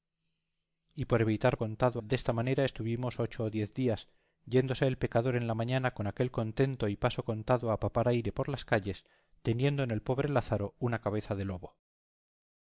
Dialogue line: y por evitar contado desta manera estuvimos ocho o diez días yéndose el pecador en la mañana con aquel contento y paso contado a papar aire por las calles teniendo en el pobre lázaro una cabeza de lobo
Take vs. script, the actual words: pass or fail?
pass